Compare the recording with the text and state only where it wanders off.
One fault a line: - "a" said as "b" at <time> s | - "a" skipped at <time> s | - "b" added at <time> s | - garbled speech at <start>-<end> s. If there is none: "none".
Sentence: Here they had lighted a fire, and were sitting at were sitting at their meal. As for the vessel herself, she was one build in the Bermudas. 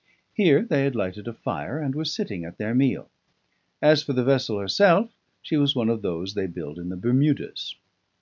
- "were sitting at" skipped at 2.6 s
- "of those they" added at 5.9 s